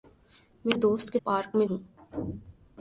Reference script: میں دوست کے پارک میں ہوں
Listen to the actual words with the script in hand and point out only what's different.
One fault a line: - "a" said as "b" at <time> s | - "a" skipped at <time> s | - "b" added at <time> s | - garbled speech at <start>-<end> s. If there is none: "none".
none